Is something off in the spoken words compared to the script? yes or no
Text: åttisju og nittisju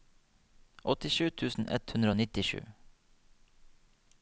yes